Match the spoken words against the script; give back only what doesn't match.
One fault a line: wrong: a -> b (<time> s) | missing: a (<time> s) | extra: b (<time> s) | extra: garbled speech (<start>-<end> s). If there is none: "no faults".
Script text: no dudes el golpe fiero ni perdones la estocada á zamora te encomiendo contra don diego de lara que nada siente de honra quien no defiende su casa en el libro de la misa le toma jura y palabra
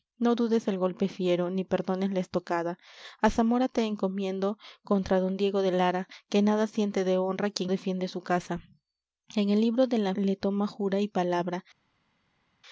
missing: no (7.7 s)
missing: misa (10.1 s)